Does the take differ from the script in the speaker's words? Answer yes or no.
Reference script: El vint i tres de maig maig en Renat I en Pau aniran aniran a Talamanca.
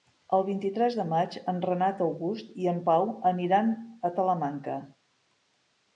yes